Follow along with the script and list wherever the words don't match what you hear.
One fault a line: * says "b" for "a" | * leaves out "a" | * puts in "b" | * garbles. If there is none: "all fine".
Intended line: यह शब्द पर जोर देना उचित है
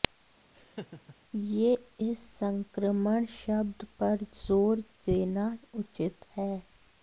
* puts in "इस संक्रमण"